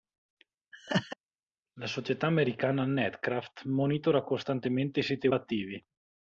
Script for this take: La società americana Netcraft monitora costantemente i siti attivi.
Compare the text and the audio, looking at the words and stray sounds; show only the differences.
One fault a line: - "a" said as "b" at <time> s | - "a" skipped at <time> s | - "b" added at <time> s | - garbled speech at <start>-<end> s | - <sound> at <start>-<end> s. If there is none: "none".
- laugh at 0.7-1.2 s